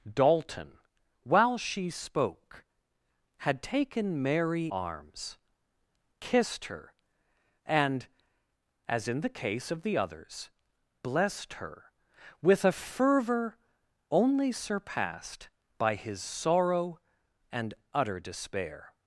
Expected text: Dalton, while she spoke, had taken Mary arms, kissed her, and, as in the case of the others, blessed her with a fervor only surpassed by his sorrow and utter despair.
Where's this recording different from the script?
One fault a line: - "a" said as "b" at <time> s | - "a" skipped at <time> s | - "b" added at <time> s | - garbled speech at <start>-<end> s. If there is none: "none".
none